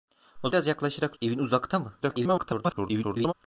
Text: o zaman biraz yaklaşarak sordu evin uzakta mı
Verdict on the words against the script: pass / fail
fail